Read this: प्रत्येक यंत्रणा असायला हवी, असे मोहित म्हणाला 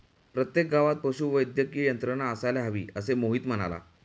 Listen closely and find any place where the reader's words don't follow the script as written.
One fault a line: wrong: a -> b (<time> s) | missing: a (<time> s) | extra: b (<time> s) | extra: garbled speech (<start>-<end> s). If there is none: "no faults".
extra: गावात पशुवैद्यकीय (0.7 s)